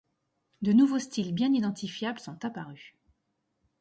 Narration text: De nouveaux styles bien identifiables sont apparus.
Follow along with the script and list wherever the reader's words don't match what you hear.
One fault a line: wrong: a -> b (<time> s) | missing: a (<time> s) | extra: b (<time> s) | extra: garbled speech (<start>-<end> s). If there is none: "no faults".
no faults